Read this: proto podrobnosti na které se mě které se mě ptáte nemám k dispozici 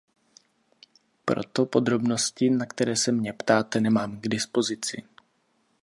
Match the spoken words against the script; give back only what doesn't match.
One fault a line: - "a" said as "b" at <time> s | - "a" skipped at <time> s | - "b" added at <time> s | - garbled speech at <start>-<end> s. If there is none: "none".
- "které se mě" skipped at 3.3 s